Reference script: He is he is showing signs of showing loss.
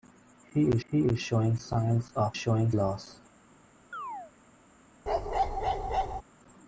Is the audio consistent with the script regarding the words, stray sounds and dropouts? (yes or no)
no